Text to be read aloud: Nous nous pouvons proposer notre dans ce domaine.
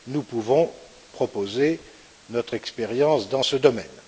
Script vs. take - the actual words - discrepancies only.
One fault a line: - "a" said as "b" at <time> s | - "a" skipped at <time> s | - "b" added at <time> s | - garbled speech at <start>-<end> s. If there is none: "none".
- "nous" skipped at 0.2 s
- "expérience" added at 2.5 s